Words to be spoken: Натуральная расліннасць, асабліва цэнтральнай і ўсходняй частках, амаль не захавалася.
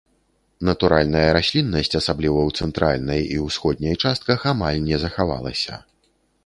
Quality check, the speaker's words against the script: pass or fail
fail